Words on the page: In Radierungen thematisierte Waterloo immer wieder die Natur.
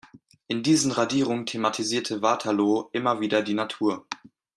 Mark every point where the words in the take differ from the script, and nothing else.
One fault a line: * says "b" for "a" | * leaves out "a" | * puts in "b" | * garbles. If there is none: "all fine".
* puts in "diesen"